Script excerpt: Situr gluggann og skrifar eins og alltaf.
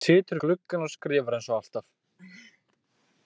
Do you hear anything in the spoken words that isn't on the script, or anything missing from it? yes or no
no